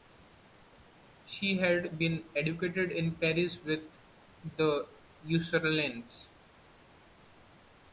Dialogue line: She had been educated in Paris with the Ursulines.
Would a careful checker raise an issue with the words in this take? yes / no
no